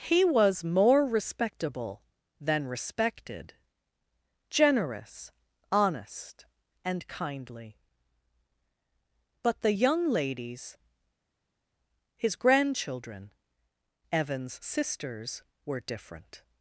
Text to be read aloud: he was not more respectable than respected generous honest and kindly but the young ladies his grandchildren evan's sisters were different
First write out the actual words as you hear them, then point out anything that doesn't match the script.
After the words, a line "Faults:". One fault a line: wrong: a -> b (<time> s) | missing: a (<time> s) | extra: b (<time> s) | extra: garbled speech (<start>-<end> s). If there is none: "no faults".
he was more respectable than respected generous honest and kindly but the young ladies his grandchildren evan's sisters were different
Faults:
missing: not (0.6 s)